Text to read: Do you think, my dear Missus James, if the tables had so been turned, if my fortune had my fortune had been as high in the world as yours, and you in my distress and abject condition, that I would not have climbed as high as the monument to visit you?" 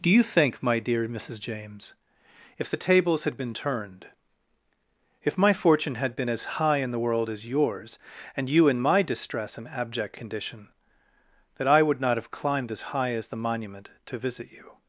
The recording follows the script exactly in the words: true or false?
false